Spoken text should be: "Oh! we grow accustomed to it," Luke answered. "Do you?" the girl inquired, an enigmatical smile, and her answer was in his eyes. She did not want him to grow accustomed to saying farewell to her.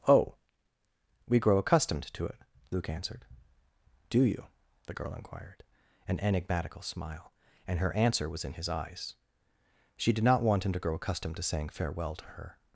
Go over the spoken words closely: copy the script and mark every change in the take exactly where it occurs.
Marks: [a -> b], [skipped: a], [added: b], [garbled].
"Oh! we grow accustomed to it," Luke answered. "Do you?" the girl inquired, an enigmatical smile, and her answer was in his eyes. She did not want him to grow accustomed to saying farewell to her.